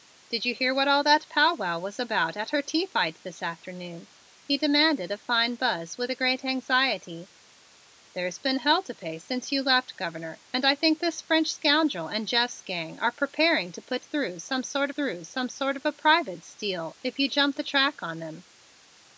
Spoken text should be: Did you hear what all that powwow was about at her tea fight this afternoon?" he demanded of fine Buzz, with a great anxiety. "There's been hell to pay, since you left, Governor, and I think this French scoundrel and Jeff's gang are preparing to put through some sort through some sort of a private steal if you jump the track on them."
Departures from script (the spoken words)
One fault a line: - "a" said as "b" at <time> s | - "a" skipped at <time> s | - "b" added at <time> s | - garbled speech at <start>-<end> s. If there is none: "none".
none